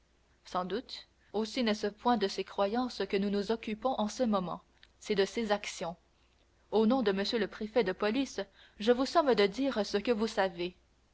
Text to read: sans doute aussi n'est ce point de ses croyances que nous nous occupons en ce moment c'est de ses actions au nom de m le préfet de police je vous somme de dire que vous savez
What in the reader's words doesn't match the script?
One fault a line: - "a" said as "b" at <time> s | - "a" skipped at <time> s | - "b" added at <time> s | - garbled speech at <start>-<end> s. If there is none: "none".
- "ce" added at 9.9 s